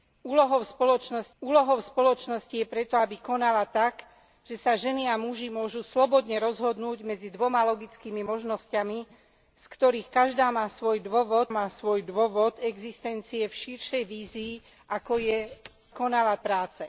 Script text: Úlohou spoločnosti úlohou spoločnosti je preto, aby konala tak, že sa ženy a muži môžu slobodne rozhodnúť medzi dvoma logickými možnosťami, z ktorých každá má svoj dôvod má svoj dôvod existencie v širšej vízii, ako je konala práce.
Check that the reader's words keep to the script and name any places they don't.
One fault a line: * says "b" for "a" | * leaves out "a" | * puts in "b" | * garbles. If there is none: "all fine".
all fine